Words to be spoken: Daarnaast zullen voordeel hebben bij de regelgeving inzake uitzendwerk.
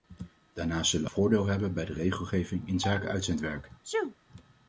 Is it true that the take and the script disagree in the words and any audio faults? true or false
true